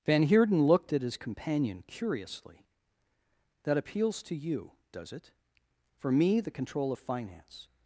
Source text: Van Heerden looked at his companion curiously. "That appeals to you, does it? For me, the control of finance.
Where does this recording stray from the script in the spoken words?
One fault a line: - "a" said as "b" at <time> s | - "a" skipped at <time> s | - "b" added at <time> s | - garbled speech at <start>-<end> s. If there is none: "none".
none